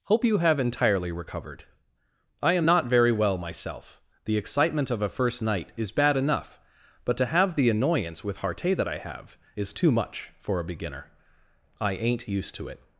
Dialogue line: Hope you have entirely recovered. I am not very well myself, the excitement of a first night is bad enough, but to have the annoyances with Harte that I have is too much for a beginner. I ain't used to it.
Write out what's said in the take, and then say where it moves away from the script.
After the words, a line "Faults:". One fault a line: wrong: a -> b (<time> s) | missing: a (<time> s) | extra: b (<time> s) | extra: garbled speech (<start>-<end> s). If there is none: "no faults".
Hope you have entirely recovered. I am not very well myself, the excitement of a first night is bad enough, but to have the annoyance with Harte that I have is too much for a beginner. I ain't used to it.
Faults:
wrong: annoyances -> annoyance (7.7 s)